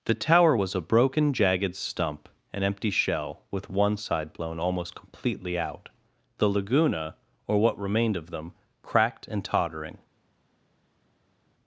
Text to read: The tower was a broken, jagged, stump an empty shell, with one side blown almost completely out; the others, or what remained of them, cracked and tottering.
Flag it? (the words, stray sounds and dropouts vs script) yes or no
yes